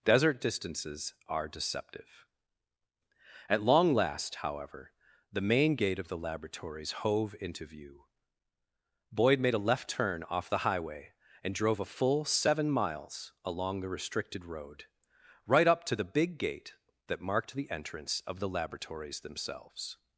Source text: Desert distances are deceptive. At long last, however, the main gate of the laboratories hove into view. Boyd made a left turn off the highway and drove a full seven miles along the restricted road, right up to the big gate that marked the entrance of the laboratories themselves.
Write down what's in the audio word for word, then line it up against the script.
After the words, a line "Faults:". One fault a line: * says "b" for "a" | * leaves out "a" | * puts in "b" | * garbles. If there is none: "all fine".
Desert distances are deceptive. At long last, however, the main gate of the laboratories hove into view. Boyd made a left turn off the highway and drove a full seven miles along the restricted road, right up to the big gate that marked the entrance of the laboratories themselves.
Faults:
all fine